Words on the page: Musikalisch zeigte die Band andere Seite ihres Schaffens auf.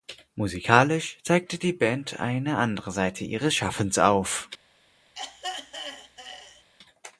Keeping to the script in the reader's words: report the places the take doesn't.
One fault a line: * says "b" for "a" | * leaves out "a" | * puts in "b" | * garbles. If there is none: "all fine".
* puts in "eine"